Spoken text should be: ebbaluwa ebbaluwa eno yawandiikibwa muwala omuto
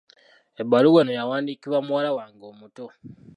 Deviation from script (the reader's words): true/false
true